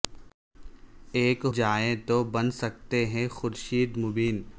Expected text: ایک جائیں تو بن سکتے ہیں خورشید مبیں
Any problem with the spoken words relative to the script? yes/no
no